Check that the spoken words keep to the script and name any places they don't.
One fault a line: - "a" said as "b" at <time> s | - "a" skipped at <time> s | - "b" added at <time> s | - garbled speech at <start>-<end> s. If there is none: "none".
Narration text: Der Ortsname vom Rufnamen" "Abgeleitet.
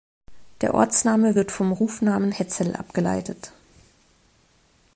- "wird" added at 1.3 s
- "Hetzel" added at 2.3 s